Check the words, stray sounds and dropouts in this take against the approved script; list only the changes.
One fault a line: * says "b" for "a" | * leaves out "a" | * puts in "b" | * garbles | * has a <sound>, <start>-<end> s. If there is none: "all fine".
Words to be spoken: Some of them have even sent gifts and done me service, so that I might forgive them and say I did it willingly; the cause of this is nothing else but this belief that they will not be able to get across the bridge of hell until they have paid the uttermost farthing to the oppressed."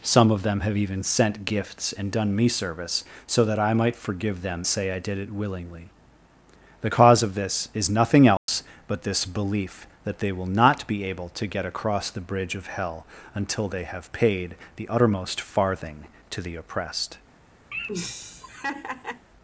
* leaves out "and"
* has a dropout, 8.4-8.5 s
* has a laugh, 17.7-19.3 s